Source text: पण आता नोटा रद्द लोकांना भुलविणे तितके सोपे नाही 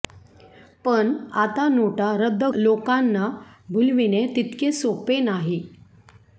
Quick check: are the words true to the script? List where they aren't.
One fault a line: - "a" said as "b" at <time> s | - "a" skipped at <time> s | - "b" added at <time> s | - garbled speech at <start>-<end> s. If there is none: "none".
none